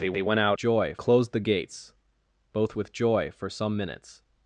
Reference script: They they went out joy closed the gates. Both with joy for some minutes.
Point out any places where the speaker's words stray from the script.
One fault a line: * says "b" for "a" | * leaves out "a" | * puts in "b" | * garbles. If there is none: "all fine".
all fine